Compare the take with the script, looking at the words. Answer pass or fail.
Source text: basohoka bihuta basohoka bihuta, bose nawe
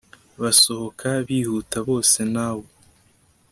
fail